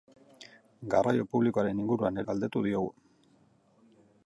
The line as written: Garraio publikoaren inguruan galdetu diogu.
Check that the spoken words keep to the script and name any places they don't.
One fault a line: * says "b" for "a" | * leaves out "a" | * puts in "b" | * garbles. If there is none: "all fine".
all fine